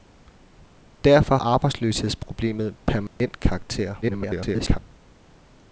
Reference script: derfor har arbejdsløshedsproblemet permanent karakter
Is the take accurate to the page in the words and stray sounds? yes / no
no